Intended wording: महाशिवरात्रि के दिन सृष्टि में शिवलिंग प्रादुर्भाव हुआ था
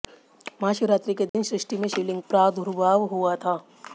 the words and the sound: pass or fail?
fail